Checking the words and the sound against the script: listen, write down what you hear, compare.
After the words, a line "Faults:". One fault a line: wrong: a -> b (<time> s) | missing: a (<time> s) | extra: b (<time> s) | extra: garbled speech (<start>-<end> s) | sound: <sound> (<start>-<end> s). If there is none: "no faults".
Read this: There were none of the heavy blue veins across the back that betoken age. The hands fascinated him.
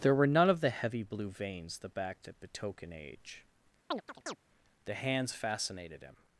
There were none of the heavy blue veins the back that betoken age. The hands fascinated him.
Faults:
missing: across (1.8 s)
sound: chirp (3.9-4.4 s)